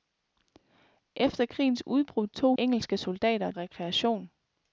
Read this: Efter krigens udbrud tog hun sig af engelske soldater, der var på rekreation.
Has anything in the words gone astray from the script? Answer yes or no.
yes